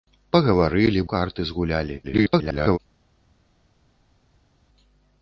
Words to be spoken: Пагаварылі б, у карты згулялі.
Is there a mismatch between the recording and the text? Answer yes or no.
yes